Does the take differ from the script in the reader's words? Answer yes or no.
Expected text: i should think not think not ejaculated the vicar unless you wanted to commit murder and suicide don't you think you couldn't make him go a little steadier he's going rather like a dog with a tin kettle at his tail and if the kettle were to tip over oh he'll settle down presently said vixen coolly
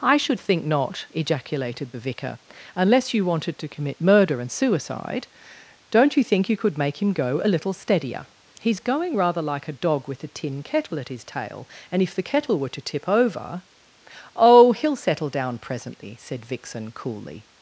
yes